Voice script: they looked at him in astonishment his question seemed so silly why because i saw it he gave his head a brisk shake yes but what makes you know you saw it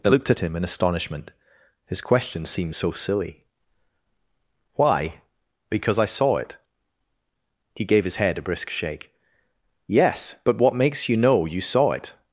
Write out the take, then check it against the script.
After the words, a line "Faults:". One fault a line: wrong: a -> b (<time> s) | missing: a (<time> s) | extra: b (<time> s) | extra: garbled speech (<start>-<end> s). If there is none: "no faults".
they looked at him in astonishment his question seemed so silly why because i saw it he gave his head a brisk shake yes but what makes you know you saw it
Faults:
no faults